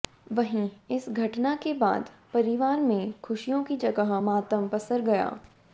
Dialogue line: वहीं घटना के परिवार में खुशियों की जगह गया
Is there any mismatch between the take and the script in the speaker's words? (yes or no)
yes